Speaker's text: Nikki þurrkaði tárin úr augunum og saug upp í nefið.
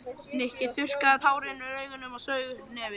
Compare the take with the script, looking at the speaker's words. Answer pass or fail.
pass